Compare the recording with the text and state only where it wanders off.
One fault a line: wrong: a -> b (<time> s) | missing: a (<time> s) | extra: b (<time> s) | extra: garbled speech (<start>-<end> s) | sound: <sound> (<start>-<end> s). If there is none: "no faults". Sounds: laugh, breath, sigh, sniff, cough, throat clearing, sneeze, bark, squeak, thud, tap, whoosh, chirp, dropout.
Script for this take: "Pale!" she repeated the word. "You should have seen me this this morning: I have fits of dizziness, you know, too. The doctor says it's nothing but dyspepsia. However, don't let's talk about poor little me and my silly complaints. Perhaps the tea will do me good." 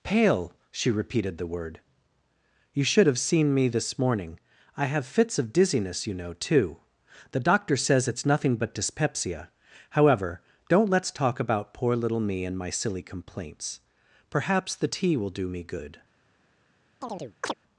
missing: this (4.0 s)
sound: chirp (17.0-17.5 s)